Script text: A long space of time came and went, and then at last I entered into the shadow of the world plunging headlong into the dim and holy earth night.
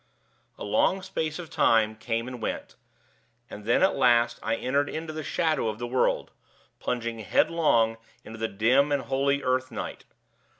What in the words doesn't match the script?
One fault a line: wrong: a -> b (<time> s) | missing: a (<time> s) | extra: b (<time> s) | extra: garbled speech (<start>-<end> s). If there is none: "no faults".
no faults